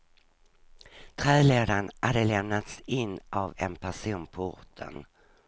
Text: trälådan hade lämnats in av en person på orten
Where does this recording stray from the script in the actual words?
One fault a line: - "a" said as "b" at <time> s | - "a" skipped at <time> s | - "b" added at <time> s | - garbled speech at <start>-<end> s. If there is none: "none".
none